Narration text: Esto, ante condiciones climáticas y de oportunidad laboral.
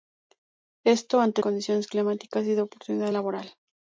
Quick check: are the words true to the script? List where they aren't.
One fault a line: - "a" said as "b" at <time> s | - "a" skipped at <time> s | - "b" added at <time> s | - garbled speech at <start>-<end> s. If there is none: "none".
none